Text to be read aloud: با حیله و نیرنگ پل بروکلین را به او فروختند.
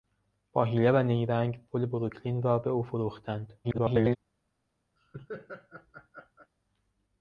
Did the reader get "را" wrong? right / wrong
right